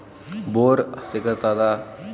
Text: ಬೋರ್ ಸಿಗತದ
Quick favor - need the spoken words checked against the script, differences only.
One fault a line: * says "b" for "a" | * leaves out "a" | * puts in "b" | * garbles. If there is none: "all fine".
all fine